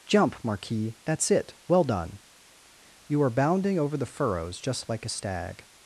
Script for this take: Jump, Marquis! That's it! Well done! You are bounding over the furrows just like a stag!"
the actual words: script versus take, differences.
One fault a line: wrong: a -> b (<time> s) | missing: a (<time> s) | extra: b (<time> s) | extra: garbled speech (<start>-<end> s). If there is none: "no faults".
no faults